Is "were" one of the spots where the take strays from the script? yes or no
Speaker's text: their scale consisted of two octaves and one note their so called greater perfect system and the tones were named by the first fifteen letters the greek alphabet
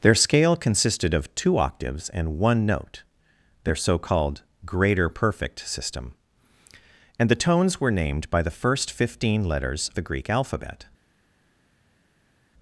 no